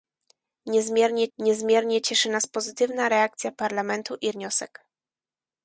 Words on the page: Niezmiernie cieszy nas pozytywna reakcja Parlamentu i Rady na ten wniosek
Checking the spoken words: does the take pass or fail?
fail